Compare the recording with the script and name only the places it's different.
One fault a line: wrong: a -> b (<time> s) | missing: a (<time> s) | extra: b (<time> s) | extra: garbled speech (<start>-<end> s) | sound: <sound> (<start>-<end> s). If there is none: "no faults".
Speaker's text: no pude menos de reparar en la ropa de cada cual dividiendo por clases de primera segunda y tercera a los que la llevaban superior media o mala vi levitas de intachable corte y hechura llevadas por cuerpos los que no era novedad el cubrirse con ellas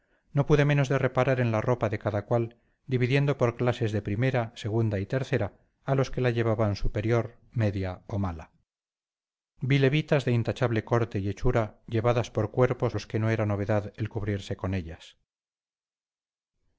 no faults